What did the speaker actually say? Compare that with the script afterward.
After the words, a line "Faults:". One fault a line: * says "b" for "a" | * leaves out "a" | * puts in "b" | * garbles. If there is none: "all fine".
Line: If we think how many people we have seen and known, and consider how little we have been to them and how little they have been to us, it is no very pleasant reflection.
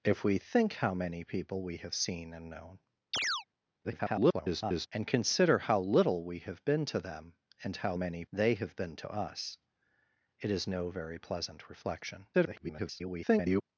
If we think how many people we have seen and known, [garbled] and consider how little we have been to them and how many they have been to us, it is no very pleasant reflection. [garbled]
Faults:
* garbles
* says "many" for "little"
* garbles